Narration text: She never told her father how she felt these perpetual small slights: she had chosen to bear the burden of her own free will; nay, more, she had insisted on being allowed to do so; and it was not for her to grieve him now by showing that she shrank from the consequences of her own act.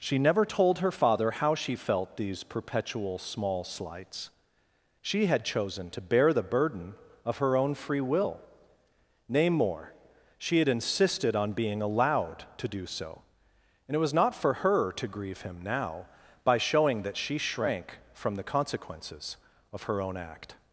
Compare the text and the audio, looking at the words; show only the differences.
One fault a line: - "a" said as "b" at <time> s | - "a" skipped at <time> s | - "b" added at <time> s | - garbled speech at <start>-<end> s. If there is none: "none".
none